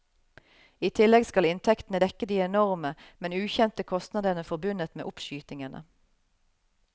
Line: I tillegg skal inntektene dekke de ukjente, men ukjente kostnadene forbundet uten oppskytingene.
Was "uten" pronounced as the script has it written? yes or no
no